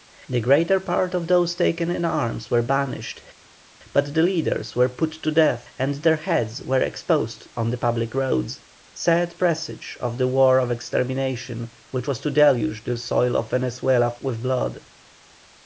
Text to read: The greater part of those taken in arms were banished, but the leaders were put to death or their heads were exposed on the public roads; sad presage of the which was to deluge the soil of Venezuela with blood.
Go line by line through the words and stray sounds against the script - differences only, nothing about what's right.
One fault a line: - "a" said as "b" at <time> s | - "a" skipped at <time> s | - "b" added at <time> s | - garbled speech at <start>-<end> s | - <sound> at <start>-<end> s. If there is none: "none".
- "or" said as "and" at 5.8 s
- "war of extermination" added at 10.3 s